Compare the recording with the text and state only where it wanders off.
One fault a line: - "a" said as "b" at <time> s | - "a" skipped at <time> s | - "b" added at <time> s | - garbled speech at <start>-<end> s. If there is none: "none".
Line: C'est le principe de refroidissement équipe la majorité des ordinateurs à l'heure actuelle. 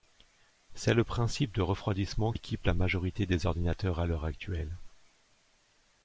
none